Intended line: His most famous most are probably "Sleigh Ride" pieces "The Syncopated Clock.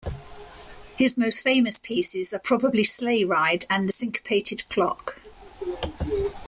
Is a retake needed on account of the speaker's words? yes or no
yes